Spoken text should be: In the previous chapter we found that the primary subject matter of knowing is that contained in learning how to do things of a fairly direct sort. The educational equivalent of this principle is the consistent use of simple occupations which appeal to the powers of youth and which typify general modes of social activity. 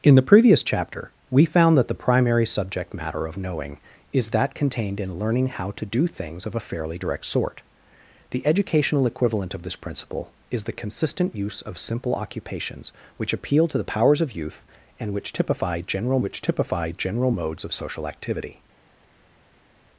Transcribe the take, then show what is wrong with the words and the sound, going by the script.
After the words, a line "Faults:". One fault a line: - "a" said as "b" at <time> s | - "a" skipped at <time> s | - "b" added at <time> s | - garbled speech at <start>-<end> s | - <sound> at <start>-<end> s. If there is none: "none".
In the previous chapter we found that the primary subject matter of knowing is that contained in learning how to do things of a fairly direct sort. The educational equivalent of this principle is the consistent use of simple occupations which appeal to the powers of youth and which typify general which typify general modes of social activity.
Faults:
- "which typify general" added at 16.2 s